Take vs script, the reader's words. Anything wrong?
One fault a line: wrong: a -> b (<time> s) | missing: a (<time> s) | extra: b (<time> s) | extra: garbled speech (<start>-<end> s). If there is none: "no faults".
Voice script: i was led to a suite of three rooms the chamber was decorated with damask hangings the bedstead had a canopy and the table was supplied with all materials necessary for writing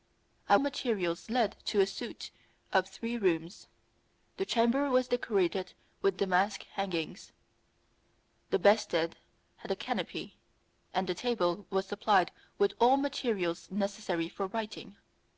wrong: was -> materials (0.6 s)